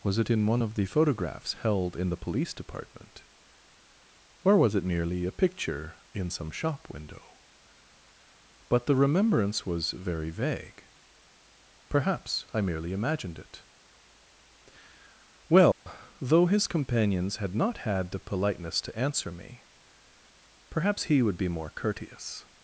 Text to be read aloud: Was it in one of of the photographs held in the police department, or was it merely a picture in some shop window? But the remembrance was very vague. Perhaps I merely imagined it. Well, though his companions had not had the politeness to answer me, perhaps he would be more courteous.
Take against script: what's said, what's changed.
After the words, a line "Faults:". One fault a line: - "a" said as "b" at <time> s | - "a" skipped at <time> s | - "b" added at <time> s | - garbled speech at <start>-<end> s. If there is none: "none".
Was it in one of the photographs held in the police department, or was it merely a picture in some shop window? But the remembrance was very vague. Perhaps I merely imagined it. Well, though his companions had not had the politeness to answer me, perhaps he would be more courteous.
Faults:
- "of" skipped at 0.8 s